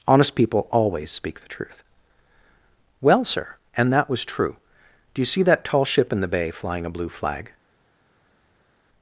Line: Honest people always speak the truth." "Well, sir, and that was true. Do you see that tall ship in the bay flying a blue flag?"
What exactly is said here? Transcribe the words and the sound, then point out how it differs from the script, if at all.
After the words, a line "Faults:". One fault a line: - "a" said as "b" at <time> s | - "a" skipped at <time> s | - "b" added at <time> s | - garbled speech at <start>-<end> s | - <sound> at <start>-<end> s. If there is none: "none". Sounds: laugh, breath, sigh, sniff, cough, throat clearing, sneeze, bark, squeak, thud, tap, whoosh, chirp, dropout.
Honest people always speak the truth." "Well, sir, and that was true. Do you see that tall ship in the bay flying a blue flag?"
Faults:
none